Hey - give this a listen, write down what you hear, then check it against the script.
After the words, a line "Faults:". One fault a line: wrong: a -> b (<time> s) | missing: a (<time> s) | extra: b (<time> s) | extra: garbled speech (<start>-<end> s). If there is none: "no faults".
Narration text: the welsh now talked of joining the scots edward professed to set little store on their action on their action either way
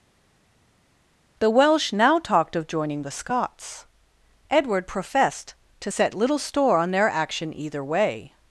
the welsh now talked of joining the scots edward professed to set little store on their action either way
Faults:
missing: on their action (7.5 s)